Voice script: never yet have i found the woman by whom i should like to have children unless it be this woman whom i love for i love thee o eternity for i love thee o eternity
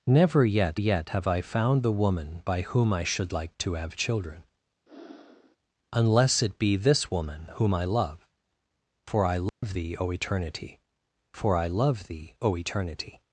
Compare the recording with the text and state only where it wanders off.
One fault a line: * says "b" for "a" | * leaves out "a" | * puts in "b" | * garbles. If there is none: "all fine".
* puts in "yet"